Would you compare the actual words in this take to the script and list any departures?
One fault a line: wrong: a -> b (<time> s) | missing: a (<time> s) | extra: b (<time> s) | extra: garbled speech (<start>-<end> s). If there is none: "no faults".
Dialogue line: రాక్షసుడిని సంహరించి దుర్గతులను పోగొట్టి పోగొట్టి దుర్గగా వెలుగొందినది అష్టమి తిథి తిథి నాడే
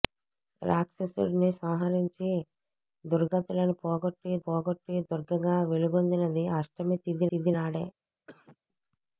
no faults